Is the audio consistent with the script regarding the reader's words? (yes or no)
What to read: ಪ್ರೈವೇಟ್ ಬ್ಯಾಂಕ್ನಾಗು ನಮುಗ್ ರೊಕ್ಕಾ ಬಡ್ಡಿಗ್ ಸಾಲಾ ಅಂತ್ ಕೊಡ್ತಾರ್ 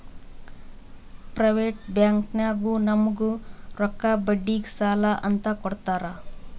yes